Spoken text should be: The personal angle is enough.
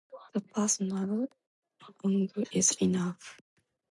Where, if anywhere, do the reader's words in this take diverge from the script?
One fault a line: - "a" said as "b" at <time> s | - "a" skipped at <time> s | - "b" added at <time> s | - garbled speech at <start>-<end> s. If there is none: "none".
none